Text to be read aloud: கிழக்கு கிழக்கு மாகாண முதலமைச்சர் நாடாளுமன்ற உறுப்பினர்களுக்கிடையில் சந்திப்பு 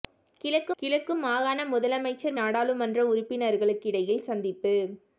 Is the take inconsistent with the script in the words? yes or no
no